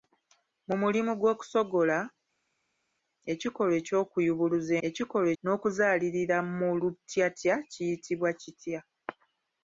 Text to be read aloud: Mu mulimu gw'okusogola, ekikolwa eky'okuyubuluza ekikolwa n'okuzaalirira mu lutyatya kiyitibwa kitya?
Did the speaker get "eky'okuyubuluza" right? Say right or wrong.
right